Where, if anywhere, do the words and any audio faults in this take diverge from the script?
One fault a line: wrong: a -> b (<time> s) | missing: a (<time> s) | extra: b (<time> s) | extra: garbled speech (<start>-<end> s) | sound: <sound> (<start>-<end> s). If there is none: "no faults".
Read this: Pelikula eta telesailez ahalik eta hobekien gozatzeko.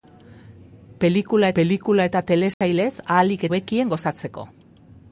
extra: pelikula (1.6 s)
sound: dropout (2.5-2.6 s)
missing: eta (3.5 s)